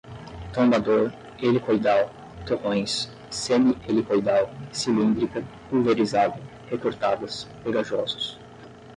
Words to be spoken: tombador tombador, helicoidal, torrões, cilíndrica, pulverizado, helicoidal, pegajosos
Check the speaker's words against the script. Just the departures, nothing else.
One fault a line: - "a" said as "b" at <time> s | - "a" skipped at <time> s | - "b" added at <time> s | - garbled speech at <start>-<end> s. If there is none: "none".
- "tombador" skipped at 1.1 s
- "semi helicoidal" added at 3.3 s
- "helicoidal" said as "recortadas" at 6.7 s